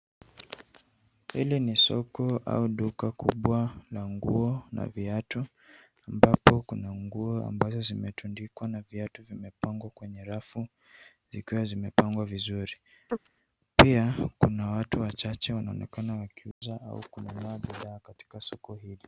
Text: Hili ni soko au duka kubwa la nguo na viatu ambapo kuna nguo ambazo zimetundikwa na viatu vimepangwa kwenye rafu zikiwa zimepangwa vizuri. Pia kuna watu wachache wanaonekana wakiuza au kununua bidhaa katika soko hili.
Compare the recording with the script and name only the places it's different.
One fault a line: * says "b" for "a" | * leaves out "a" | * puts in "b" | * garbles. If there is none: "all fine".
all fine